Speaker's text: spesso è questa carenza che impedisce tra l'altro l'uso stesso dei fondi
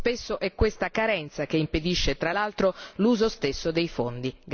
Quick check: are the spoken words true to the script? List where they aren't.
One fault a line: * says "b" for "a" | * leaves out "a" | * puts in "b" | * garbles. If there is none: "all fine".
all fine